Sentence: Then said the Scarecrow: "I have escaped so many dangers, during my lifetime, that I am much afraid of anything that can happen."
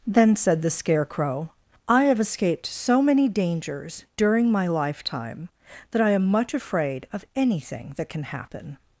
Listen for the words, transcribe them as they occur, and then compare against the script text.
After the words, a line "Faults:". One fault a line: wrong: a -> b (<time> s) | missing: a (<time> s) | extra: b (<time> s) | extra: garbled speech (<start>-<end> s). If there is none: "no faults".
Then said the Scarecrow: "I have escaped so many dangers, during my lifetime, that I am much afraid of anything that can happen."
Faults:
no faults